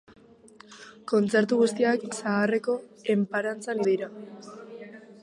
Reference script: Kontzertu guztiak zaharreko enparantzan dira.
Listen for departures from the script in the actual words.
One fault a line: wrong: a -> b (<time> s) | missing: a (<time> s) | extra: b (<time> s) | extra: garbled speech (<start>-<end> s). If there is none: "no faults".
no faults